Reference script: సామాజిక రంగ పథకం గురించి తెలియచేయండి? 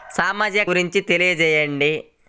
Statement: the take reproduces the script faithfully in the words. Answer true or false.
false